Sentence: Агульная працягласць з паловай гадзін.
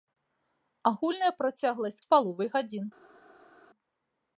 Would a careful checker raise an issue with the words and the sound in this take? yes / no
no